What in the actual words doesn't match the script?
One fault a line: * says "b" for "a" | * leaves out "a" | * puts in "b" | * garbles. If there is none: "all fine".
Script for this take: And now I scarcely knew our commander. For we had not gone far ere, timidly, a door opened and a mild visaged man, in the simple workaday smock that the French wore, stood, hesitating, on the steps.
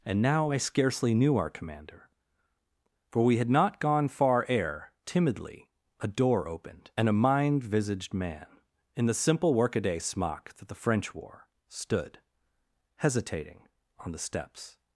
* says "mind" for "mild"